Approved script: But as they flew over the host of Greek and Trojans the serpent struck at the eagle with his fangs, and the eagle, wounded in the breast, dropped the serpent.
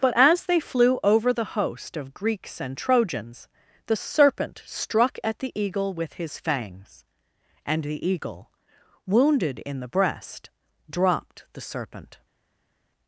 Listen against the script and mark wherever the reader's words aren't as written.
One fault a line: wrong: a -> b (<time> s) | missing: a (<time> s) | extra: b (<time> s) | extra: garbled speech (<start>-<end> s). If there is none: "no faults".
wrong: Greek -> Greeks (2.1 s)